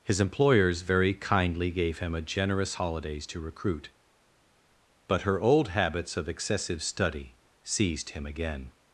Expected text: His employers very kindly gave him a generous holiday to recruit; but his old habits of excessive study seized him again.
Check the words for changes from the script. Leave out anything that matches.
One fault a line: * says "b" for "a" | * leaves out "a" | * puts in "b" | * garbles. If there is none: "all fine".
* says "holidays" for "holiday"
* says "her" for "his"